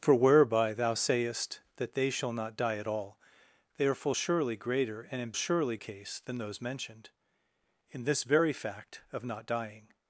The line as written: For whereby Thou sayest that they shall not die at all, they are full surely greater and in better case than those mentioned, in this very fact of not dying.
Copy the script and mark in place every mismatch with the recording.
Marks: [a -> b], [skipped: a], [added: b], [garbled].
For whereby Thou sayest that they shall not die at all, they are full surely greater and in [better -> surely] case than those mentioned, in this very fact of not dying.